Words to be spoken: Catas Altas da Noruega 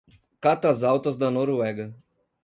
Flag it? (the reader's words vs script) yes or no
no